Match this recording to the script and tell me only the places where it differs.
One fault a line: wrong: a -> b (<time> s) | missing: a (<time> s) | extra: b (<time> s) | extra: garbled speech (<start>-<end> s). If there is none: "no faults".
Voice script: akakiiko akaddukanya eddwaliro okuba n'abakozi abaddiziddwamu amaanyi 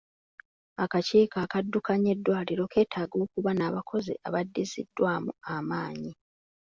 extra: keetaaga (2.7 s)